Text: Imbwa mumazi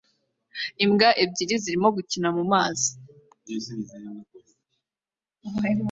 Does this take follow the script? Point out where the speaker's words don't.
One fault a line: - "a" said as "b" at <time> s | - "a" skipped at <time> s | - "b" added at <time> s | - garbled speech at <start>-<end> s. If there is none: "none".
- "ebyiri zirimo gukina" added at 1.2 s